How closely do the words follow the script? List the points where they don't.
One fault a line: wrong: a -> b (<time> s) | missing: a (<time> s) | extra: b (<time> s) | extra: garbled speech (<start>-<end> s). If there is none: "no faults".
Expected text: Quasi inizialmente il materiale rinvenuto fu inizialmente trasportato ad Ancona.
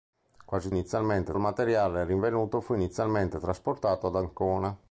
no faults